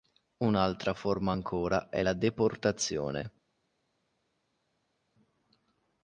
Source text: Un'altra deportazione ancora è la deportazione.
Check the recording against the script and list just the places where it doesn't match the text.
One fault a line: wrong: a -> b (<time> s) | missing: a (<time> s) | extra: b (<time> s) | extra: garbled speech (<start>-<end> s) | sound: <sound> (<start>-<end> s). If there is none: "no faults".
wrong: deportazione -> forma (0.9 s)